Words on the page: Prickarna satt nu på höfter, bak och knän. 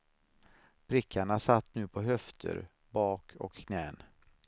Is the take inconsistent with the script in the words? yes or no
no